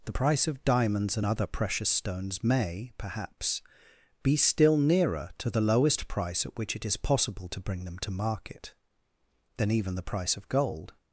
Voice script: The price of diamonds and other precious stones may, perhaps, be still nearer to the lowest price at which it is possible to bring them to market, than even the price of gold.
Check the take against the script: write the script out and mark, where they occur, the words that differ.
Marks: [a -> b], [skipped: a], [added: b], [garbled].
The price of diamonds and other precious stones may, perhaps, be still nearer to the lowest price at which it is possible to bring them to market, than even the price of gold.